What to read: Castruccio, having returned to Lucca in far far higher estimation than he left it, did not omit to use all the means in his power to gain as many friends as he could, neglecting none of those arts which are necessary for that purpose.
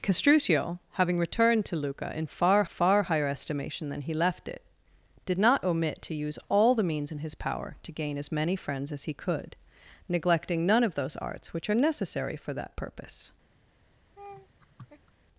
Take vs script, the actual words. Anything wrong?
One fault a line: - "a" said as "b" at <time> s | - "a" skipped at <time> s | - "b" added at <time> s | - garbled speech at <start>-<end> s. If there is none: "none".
none